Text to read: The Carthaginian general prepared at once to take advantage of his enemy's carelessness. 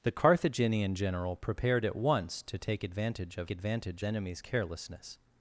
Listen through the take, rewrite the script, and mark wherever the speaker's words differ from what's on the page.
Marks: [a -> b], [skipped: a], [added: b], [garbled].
The Carthaginian general prepared at once to take advantage of [his -> advantage] enemy's carelessness.